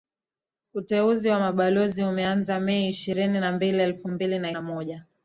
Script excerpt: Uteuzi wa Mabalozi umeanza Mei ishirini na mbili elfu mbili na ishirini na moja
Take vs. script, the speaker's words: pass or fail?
fail